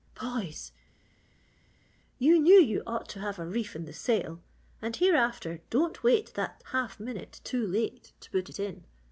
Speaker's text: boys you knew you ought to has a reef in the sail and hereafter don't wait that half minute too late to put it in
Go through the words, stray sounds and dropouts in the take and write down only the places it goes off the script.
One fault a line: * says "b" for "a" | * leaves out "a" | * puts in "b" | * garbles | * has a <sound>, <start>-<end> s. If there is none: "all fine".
* says "have" for "has"